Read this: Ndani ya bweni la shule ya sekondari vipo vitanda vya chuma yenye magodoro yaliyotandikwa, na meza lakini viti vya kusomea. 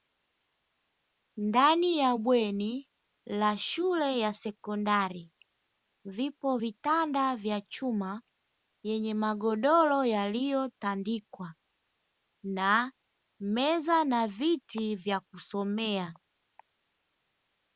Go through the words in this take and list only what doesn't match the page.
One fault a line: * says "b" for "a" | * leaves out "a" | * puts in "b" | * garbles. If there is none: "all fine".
* says "na" for "lakini"